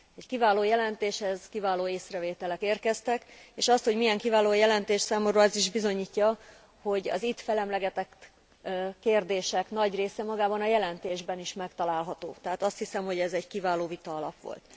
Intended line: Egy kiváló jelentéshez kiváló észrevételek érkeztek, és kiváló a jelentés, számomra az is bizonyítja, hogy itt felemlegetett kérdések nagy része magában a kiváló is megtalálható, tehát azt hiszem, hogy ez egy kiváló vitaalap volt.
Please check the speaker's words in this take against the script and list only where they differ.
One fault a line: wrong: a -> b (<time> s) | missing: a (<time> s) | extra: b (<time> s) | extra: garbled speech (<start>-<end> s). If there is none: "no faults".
extra: azt hogy milyen (3.7 s)
extra: az (7.1 s)
wrong: kiváló -> jelentésben (10.7 s)